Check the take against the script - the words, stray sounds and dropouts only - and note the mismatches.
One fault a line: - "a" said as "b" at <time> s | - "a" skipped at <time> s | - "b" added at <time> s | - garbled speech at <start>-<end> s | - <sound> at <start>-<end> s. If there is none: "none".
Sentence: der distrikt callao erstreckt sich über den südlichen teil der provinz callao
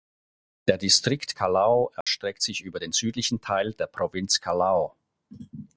- dropout at 2.0-2.1 s